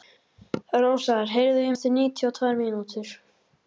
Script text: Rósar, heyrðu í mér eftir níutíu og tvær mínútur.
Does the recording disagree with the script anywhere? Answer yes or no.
yes